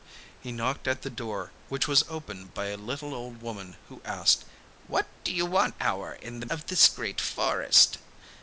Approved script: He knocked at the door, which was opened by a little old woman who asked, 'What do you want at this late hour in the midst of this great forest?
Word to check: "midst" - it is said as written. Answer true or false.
false